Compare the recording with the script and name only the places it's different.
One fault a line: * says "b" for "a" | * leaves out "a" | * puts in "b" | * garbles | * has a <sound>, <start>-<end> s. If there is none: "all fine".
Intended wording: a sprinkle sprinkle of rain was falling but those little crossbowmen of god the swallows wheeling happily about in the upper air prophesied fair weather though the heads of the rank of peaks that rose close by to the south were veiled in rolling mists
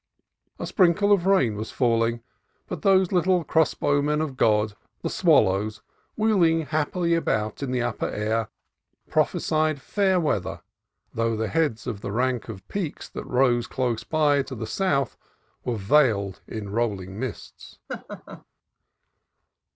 * leaves out "sprinkle"
* has a laugh, 17.9-18.4 s